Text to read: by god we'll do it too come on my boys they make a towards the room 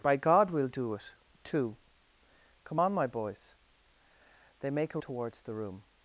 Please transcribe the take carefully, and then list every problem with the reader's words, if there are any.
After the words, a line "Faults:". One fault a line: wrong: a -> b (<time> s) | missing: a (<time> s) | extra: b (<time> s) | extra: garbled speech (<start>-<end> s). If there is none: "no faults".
by god we'll do it too come on my boys they make a towards the room
Faults:
no faults